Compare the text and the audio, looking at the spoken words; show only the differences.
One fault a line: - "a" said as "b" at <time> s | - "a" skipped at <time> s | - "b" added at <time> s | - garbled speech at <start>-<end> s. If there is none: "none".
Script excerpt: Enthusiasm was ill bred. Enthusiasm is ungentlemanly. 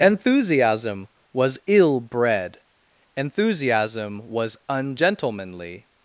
- "is" said as "was" at 4.2 s